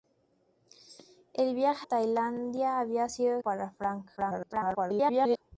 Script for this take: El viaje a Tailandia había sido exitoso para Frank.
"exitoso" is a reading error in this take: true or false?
true